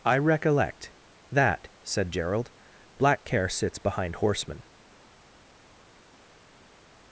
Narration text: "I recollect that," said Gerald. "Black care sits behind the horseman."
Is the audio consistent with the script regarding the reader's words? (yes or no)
no